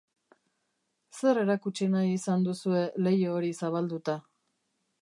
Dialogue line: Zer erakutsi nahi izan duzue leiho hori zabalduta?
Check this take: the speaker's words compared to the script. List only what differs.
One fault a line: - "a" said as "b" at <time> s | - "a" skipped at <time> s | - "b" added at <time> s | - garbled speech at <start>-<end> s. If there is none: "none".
none